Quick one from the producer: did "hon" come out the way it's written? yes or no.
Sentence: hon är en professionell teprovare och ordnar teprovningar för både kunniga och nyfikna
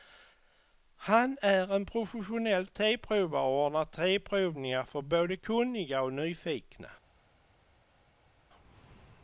no